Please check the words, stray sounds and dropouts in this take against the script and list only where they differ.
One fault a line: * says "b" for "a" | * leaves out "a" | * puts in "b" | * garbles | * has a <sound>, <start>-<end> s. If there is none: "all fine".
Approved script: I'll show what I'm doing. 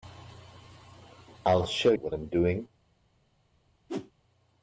* has a whoosh, 3.9-4.1 s